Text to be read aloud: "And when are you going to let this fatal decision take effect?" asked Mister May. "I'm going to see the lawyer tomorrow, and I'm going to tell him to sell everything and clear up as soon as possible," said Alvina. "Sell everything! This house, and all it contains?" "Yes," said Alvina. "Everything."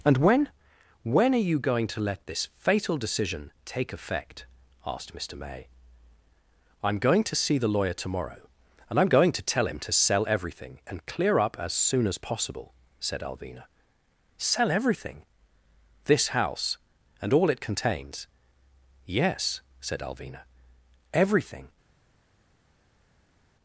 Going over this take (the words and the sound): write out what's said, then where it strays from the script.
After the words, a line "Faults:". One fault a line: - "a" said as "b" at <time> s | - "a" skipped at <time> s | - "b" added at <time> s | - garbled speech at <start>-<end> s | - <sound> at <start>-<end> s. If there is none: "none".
"And when when are you going to let this fatal decision take effect?" asked Mister May. "I'm going to see the lawyer tomorrow, and I'm going to tell him to sell everything and clear up as soon as possible," said Alvina. "Sell everything! This house, and all it contains?" "Yes," said Alvina. "Everything."
Faults:
- "when" added at 1.0 s